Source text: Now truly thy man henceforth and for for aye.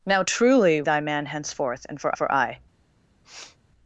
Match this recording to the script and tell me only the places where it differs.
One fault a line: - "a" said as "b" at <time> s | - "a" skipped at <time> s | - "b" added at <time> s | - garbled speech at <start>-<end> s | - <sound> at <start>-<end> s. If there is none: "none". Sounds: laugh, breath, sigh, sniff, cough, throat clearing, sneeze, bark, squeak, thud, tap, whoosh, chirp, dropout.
- sniff at 3.2-3.6 s